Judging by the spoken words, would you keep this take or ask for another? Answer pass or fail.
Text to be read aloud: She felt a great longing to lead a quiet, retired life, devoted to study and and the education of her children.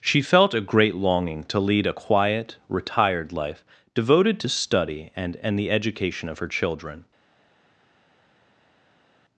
pass